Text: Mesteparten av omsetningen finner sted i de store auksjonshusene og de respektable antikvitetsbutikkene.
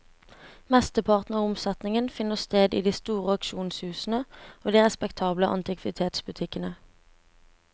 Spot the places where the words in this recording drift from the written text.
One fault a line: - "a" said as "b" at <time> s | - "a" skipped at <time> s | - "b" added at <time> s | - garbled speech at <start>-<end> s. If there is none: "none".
none